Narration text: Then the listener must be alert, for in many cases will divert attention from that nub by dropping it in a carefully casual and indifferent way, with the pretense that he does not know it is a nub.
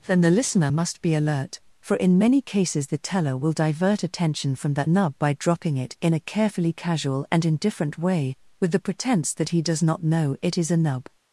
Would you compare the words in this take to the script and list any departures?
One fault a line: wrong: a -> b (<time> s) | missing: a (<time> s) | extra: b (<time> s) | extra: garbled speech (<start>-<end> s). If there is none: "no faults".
extra: the teller (2.9 s)